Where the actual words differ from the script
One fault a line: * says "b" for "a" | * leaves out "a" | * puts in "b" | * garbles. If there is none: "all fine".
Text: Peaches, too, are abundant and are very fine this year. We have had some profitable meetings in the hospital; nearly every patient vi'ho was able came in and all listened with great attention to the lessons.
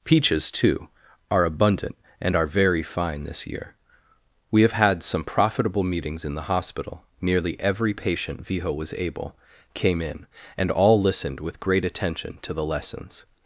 all fine